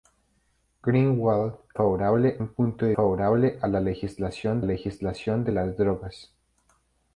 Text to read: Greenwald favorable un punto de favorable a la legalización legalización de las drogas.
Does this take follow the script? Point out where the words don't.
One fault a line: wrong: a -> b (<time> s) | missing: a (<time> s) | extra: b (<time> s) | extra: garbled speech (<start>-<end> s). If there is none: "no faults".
no faults